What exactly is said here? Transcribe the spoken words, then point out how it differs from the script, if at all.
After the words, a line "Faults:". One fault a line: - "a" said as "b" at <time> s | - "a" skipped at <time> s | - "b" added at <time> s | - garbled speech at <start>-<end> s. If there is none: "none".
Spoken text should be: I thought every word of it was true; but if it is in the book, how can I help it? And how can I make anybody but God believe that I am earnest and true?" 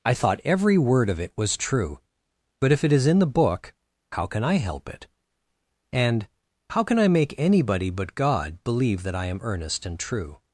I thought every word of it was true; but if it is in the book, how can I help it? And how can I make anybody but God believe that I am earnest and true?"
Faults:
none